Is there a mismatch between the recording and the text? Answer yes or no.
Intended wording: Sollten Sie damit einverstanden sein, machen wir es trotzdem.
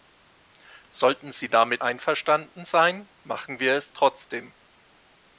no